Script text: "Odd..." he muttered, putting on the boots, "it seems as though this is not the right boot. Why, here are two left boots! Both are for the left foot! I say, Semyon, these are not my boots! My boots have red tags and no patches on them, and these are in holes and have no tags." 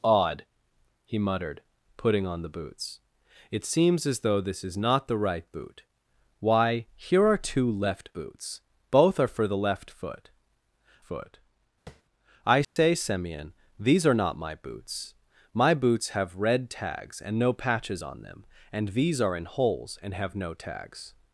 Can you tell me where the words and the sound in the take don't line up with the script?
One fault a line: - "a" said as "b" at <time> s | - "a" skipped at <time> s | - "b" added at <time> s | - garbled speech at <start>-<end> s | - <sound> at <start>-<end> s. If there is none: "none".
- "foot" added at 11.0 s
- tap at 11.9-12.0 s
- dropout at 12.6-12.8 s